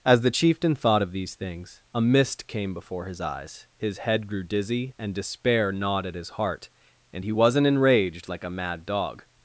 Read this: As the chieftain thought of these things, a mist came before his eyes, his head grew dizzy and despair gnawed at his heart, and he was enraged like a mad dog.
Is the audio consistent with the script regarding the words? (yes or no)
no